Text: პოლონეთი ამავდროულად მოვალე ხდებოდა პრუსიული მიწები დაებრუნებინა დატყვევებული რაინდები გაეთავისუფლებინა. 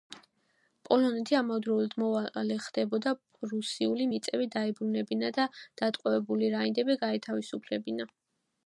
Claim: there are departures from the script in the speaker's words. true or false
true